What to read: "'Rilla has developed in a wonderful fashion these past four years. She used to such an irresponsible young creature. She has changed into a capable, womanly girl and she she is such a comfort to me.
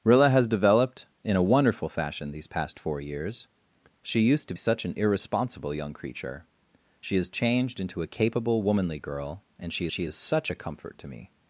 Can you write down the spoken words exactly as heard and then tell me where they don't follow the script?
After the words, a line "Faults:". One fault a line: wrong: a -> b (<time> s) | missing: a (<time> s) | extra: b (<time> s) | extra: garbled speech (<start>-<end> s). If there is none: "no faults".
"'Rilla has developed in a wonderful fashion these past four years. She used to such an irresponsible young creature. She has changed into a capable, womanly girl and she she is such a comfort to me.
Faults:
no faults